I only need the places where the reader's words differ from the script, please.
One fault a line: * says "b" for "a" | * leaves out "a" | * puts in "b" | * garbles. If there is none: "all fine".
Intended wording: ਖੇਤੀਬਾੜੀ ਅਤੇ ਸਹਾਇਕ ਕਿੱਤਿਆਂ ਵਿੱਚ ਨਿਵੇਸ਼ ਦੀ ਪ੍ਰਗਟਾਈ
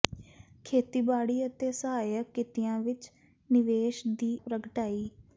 all fine